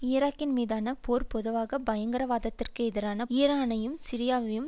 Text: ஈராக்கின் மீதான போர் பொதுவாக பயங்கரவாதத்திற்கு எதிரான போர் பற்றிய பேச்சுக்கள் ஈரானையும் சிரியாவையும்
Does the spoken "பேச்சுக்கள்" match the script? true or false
false